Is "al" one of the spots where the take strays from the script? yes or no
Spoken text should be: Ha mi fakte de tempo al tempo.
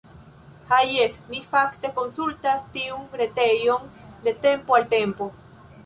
no